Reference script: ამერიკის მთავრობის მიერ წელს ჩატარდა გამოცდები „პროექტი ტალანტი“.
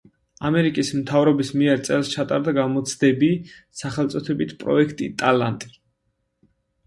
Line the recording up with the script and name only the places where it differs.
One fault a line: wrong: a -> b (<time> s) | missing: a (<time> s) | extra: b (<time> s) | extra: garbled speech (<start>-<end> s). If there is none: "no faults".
extra: სახელწოდებით (3.8 s)